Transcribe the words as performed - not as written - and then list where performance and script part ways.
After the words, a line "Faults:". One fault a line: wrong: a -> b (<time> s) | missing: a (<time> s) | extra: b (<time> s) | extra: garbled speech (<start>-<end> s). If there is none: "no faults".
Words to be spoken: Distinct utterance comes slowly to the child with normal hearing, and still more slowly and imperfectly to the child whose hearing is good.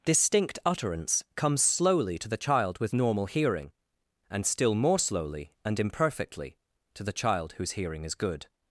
Distinct utterance comes slowly to the child with normal hearing, and still more slowly and imperfectly to the child whose hearing is good.
Faults:
no faults